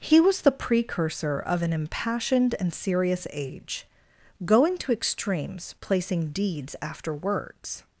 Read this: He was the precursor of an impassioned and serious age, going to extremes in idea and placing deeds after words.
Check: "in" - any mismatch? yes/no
yes